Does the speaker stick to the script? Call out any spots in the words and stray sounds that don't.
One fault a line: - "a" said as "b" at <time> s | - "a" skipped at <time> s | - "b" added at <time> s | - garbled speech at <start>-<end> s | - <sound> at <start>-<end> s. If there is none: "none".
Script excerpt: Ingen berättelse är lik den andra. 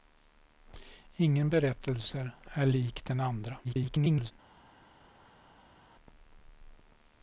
- garbled speech at 3.6-4.3 s